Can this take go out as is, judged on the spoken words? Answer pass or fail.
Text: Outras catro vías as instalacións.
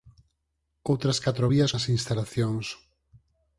pass